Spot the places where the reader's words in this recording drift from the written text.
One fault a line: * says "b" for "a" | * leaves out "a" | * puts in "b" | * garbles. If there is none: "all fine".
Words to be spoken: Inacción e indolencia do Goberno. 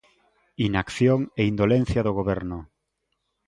all fine